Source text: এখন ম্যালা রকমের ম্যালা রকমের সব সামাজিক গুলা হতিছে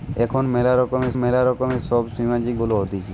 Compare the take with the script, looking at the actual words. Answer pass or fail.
pass